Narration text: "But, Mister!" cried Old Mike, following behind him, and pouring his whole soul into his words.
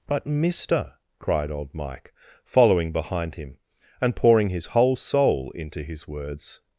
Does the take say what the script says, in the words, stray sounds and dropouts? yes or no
yes